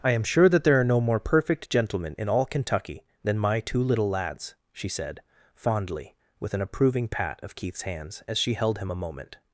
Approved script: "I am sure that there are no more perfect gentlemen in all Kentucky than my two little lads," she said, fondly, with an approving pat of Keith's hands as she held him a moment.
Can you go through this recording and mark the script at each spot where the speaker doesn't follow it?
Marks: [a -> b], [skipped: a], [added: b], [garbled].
"I am sure that there are no more perfect gentlemen in all Kentucky than my two little lads," she said, fondly, with an approving pat of Keith's hands as she held him a moment.